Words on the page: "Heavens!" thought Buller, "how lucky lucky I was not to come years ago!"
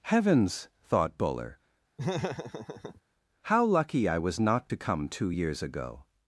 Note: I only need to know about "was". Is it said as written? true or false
true